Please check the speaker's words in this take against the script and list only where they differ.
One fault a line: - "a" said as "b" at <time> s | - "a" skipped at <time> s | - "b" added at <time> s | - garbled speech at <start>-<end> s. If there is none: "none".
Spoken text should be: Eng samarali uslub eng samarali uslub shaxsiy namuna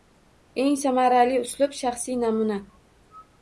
- "eng samarali uslub" skipped at 1.8 s